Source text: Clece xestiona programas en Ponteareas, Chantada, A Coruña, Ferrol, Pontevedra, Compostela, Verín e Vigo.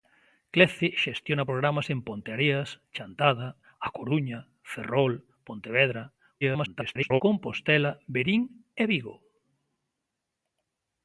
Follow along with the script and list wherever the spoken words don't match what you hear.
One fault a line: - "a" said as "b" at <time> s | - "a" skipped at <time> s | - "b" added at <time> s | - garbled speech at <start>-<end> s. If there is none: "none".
- garbled speech at 6.4-7.2 s